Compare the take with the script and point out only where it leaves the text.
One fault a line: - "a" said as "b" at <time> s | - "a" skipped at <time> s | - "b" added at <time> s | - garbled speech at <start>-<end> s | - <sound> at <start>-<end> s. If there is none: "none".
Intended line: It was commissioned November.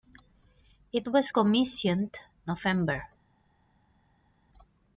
none